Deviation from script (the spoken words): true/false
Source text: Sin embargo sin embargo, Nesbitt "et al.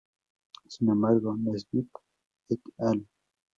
true